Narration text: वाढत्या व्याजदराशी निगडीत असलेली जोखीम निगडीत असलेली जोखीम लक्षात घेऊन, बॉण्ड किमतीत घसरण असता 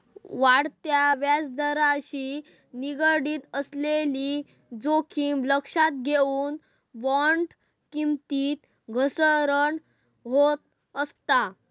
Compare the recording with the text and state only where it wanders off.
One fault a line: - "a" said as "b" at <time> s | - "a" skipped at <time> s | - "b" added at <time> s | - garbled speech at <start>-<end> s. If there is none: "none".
- "निगडीत असलेली जोखीम" skipped at 5.4 s
- "होत" added at 10.3 s